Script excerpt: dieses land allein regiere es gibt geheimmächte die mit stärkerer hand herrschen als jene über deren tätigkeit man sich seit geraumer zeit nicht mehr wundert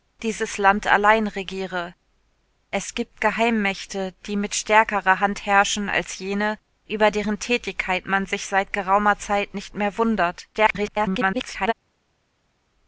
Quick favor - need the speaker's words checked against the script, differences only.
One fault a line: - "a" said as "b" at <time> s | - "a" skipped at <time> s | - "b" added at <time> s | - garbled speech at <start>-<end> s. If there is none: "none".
- garbled speech at 10.5-11.7 s